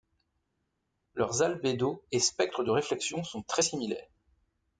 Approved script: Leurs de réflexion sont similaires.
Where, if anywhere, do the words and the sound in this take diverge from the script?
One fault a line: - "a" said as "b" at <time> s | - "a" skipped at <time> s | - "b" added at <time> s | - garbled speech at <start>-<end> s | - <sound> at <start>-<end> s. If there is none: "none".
- "albédos et spectres" added at 1.4 s
- "très" added at 3.4 s